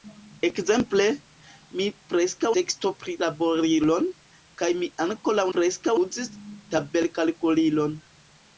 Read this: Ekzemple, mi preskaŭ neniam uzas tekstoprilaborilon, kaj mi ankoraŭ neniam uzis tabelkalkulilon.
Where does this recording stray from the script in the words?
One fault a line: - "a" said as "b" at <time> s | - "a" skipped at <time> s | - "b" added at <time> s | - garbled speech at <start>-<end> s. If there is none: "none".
- "neniam uzas" skipped at 2.5 s
- "neniam" said as "preskaŭ" at 5.6 s